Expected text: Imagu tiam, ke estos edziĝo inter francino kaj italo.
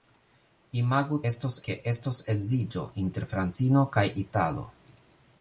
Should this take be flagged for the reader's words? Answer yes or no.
yes